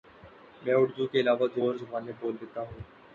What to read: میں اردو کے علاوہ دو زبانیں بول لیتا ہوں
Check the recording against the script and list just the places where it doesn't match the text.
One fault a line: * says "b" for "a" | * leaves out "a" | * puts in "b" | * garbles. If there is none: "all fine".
* puts in "اور"